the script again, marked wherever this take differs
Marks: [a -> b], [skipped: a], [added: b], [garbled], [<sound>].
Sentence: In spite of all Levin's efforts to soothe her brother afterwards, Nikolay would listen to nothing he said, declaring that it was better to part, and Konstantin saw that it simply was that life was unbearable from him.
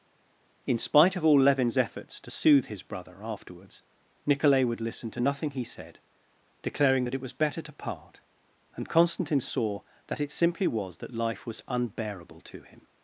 In spite of all Levin's efforts to soothe [her -> his] brother afterwards, Nikolay would listen to nothing he said, declaring that it was better to part, and Konstantin saw that it simply was that life was unbearable [from -> to] him.